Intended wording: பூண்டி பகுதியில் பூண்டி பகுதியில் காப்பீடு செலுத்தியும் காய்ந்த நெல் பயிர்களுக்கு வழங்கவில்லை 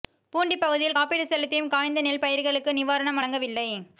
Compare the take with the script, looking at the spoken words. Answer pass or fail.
fail